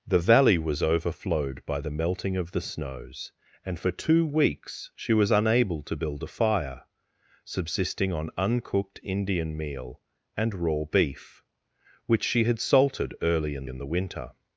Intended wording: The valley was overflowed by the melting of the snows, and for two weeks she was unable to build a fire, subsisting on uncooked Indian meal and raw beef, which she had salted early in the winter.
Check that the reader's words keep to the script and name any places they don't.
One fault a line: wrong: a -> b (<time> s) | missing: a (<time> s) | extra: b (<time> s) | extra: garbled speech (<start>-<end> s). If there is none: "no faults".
extra: in (13.7 s)